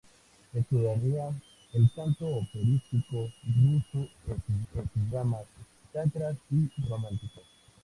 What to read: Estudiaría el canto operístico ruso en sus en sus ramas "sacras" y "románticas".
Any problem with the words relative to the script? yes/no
no